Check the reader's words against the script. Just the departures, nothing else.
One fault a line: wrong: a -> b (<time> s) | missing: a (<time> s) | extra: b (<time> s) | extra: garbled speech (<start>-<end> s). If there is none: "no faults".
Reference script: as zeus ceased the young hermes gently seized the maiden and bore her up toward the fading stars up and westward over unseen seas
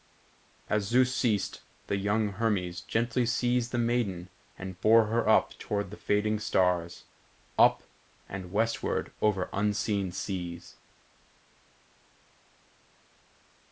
no faults